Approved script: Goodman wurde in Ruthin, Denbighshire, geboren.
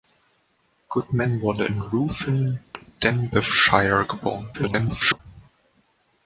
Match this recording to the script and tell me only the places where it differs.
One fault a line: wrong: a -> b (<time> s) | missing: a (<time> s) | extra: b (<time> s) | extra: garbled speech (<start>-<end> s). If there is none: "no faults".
extra: garbled speech (4.5-5.2 s)